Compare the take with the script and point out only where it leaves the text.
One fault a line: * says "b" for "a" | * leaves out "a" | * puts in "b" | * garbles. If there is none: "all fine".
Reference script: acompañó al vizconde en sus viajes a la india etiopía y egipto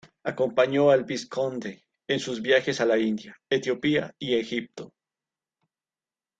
all fine